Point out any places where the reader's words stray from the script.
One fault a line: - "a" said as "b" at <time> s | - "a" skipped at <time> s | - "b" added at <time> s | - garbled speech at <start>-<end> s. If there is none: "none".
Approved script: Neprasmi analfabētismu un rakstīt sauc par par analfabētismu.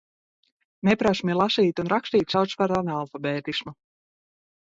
- "analfabētismu" said as "lasīt" at 1.4 s
- "par" skipped at 2.7 s